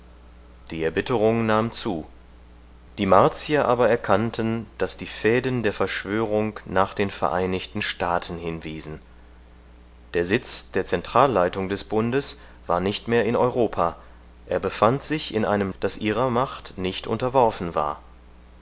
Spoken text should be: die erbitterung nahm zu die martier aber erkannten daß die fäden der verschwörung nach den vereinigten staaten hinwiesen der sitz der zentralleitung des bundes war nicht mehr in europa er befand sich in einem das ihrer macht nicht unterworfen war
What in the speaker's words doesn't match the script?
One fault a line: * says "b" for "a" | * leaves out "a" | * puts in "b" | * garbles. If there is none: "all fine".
all fine